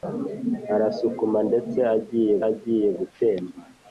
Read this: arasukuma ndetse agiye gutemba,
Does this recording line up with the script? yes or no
no